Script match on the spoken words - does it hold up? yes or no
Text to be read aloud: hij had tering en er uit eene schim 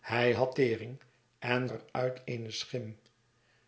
yes